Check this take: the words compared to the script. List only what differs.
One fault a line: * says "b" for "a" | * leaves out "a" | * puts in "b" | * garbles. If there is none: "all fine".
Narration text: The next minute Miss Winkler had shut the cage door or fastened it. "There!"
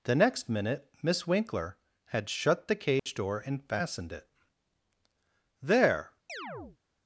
* says "and" for "or"